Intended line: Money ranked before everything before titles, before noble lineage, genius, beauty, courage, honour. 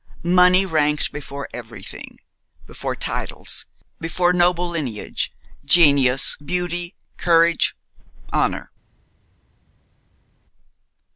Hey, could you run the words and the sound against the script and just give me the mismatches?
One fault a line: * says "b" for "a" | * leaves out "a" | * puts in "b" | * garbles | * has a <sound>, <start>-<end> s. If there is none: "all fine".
all fine